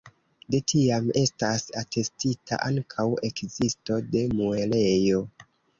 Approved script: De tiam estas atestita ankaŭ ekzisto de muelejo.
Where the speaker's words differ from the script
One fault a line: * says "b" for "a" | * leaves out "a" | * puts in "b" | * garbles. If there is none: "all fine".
all fine